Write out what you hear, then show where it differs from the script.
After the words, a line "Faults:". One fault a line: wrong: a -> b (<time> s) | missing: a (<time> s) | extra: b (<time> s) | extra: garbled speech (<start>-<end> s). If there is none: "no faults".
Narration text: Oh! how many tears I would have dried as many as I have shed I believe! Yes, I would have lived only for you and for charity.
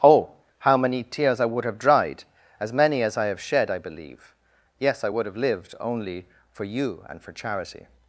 Oh! how many tears I would have dried as many as I have shed I believe! Yes, I would have lived only for you and for charity.
Faults:
no faults